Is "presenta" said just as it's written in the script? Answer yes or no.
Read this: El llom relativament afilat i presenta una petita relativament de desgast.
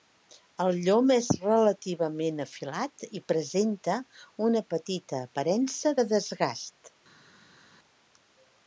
yes